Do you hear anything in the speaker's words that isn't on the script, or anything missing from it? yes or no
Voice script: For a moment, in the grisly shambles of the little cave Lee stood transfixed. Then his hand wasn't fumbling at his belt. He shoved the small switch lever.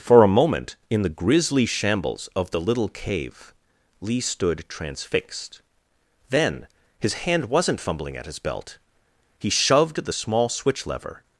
no